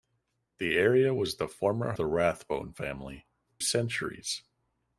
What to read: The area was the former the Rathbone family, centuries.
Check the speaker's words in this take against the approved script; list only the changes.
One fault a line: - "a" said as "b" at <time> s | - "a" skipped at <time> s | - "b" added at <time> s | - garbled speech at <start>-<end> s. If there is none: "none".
none